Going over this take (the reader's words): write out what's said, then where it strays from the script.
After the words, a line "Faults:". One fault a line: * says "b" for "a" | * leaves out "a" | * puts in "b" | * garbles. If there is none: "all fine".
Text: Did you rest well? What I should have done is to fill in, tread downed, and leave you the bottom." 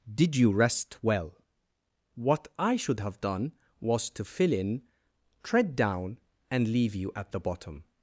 Did you rest well? What I should have done was to fill in, tread down, and leave you at the bottom."
Faults:
* says "was" for "is"
* says "down" for "downed"
* puts in "at"